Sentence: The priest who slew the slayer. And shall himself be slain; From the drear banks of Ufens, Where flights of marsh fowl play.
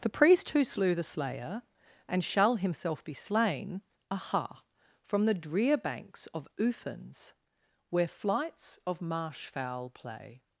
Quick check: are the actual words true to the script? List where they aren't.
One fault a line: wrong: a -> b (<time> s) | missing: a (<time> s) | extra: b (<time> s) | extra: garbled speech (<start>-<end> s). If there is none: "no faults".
extra: aha (4.1 s)